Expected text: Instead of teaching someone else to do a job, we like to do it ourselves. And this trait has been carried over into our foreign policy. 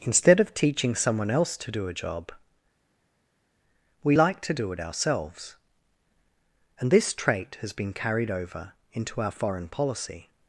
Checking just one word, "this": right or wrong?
right